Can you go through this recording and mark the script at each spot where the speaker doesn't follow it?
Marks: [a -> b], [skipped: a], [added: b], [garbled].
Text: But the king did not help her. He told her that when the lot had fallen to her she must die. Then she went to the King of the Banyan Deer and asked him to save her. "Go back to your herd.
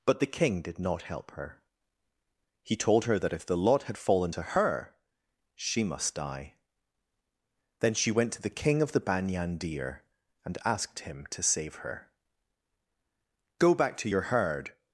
But the king did not help her. He told her that [when -> if] the lot had fallen to her she must die. Then she went to the King of the Banyan Deer and asked him to save her. "Go back to your herd.